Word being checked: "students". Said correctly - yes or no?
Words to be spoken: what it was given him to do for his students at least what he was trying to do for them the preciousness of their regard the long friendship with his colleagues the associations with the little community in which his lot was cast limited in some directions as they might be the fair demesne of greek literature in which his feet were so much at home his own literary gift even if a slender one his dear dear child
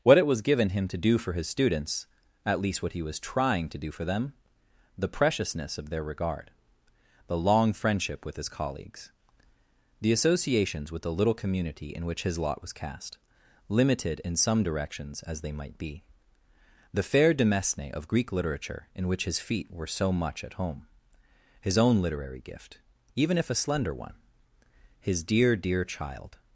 yes